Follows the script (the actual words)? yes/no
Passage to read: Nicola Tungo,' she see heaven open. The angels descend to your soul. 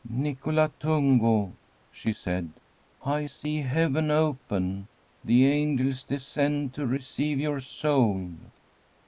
no